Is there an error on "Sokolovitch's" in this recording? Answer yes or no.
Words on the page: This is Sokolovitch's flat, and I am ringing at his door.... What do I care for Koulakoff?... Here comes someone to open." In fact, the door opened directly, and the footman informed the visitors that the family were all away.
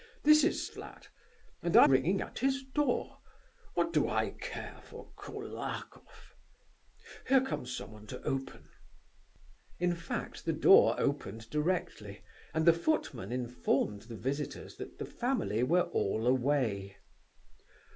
yes